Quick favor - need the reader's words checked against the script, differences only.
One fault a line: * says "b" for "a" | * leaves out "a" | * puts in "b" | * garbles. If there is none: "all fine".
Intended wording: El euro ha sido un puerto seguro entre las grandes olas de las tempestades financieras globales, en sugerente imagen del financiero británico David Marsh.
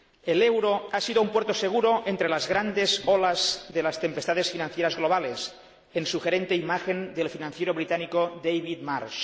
all fine